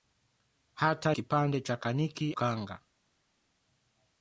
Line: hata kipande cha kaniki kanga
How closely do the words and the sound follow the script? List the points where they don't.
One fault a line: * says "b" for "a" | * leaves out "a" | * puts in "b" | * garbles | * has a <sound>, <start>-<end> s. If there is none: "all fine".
all fine